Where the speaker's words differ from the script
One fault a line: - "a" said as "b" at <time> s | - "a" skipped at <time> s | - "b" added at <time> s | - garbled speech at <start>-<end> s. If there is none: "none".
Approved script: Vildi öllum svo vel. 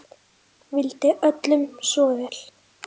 none